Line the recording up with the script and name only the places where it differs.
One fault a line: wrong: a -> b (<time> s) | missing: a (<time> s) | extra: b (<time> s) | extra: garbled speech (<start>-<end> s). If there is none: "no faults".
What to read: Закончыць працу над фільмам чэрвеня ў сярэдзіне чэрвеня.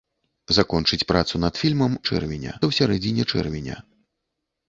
no faults